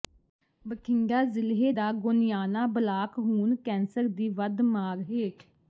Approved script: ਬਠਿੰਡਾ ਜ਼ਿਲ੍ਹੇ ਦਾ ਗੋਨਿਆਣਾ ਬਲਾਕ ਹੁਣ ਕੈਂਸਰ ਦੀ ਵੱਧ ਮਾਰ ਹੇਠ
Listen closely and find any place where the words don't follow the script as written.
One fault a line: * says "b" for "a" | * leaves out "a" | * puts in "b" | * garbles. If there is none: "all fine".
all fine